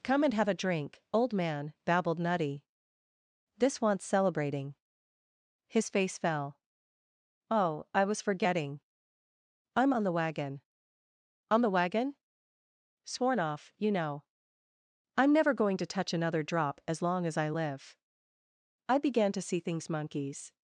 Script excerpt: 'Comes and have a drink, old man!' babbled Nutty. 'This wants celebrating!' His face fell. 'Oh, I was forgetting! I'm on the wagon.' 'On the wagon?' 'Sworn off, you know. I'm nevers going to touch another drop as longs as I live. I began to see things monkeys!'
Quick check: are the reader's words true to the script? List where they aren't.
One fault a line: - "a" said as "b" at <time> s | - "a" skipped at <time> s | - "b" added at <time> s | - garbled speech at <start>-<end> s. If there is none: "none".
- "Comes" said as "Come" at 0.0 s
- "nevers" said as "never" at 15.3 s
- "longs" said as "long" at 17.0 s